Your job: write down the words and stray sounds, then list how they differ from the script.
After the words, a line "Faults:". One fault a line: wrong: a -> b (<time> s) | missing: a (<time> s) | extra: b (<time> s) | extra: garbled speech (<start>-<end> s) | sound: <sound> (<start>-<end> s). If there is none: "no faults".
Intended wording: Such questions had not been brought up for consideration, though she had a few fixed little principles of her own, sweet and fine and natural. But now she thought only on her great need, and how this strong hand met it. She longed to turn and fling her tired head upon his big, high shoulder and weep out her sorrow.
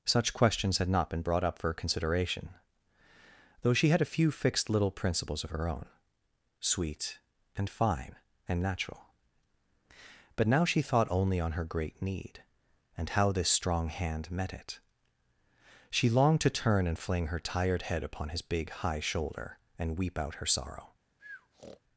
Such questions had not been brought up for consideration, though she had a few fixed little principles of her own, sweet and fine and natural. But now she thought only on her great need, and how this strong hand met it. She longed to turn and fling her tired head upon his big, high shoulder and weep out her sorrow.
Faults:
sound: breath (21.2-21.8 s)